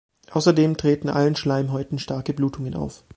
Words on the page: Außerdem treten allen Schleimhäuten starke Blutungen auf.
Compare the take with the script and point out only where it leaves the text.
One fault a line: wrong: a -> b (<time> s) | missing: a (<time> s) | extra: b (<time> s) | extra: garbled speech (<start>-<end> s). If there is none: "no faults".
no faults